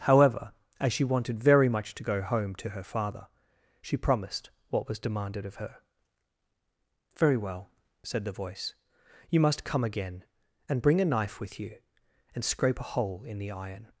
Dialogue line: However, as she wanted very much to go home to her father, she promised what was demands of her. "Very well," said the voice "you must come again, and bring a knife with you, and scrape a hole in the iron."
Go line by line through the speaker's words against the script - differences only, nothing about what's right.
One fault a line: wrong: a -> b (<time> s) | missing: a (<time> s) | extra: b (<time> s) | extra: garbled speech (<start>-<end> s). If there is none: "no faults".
wrong: demands -> demanded (5.0 s)